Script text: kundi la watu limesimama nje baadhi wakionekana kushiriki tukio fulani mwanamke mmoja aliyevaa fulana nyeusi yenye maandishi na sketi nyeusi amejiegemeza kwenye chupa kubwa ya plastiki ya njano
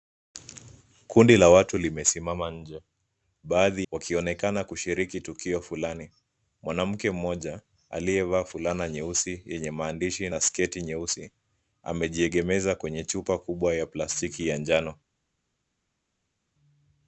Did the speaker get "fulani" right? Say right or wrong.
right